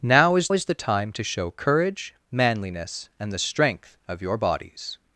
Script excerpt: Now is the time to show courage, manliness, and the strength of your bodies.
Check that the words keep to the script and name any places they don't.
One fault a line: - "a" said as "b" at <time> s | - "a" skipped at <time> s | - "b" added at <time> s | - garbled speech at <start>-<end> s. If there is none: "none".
- "is" added at 0.5 s